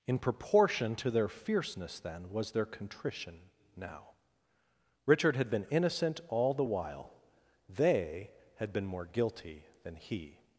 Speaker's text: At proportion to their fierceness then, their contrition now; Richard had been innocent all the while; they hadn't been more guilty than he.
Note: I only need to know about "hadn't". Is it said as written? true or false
false